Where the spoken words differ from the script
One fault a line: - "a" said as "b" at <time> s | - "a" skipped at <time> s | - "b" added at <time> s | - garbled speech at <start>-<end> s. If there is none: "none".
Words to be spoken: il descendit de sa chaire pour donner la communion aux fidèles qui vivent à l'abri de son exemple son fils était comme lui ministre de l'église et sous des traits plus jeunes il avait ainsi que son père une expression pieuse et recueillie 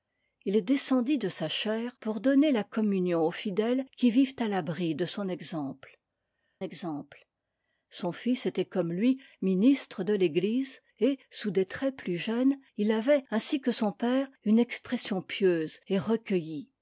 - "exemple" added at 6.6 s